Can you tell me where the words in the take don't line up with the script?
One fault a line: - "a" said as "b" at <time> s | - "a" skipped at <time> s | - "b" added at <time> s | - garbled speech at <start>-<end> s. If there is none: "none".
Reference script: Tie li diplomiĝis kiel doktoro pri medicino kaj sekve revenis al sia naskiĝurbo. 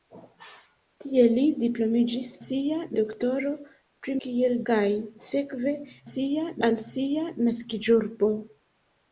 - "kiel" said as "sia" at 2.4 s
- "medicino" said as "kiel" at 4.2 s
- "revenis" said as "sia" at 6.1 s